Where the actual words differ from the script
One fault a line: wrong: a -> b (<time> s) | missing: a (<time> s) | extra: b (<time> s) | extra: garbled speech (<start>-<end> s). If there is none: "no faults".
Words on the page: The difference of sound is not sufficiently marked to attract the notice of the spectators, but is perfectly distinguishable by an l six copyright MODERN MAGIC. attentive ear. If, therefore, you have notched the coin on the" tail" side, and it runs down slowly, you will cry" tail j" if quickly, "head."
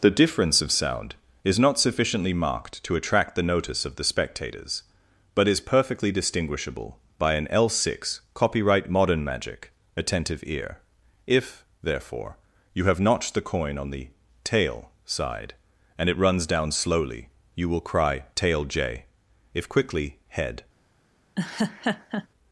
no faults